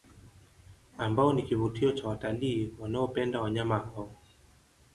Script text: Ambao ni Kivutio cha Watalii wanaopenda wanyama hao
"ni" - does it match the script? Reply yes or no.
yes